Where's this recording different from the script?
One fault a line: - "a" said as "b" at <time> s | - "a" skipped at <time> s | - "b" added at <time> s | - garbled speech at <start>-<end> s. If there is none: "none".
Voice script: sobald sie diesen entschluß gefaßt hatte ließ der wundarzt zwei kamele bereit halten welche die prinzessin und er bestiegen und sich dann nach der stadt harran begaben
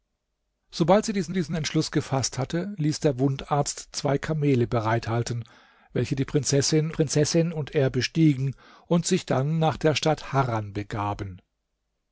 - "diesen" added at 1.3 s
- "prinzessin" added at 6.9 s